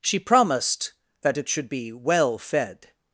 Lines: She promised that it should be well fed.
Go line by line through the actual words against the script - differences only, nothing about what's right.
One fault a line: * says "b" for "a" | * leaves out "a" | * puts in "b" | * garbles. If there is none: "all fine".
all fine